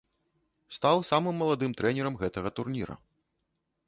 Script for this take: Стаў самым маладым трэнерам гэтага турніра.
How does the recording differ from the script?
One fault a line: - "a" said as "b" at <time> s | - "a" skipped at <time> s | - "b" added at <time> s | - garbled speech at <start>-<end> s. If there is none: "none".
none